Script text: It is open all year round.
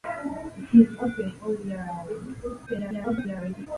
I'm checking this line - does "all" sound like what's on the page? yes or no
yes